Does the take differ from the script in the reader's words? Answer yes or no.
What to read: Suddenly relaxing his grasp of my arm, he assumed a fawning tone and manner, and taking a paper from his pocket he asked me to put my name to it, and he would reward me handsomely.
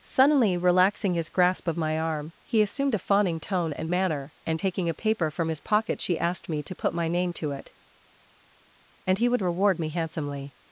yes